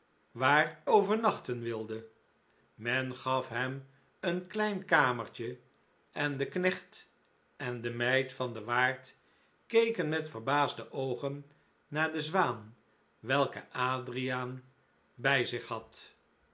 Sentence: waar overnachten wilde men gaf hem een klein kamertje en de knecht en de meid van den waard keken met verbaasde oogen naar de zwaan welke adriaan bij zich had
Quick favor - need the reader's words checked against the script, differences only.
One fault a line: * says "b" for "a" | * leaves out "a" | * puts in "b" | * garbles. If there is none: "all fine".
all fine